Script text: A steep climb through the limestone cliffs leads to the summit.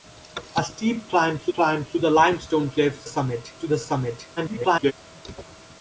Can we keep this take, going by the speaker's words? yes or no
no